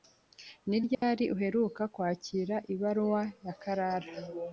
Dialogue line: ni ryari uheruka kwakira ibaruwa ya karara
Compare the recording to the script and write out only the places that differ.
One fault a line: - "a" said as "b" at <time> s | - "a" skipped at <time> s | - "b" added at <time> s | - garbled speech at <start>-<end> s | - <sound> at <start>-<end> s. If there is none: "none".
- dropout at 0.9-1.0 s